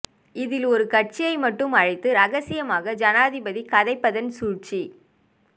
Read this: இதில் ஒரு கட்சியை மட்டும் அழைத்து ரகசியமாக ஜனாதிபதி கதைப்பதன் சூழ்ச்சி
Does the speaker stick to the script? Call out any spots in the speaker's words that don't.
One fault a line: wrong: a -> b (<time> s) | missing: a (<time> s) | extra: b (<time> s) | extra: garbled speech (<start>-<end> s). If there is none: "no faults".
no faults